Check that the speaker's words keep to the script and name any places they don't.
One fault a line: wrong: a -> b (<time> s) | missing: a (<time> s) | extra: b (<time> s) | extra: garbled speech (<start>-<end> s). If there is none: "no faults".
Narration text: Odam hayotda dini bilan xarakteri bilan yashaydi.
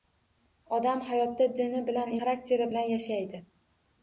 no faults